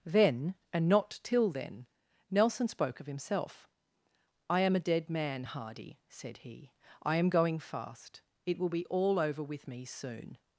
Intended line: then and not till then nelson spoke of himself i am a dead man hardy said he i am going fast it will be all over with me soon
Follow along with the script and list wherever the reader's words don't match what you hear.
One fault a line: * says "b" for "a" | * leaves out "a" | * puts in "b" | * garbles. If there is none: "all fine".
all fine